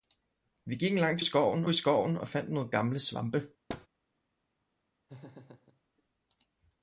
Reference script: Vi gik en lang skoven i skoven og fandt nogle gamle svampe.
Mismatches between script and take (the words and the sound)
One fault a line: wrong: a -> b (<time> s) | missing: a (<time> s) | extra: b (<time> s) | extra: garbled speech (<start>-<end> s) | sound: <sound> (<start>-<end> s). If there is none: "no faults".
sound: thud (3.7-3.9 s)
sound: laugh (5.1-5.8 s)